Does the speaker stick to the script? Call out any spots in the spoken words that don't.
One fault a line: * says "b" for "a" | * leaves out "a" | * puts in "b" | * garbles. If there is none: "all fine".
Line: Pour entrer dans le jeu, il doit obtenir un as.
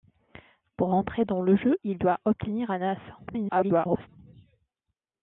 * garbles